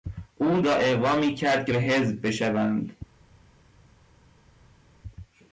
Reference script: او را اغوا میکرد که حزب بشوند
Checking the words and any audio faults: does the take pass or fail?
pass